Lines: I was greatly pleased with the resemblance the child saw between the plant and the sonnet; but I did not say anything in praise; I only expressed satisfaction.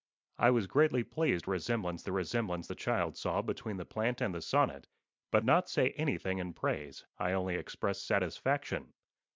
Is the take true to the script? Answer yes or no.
no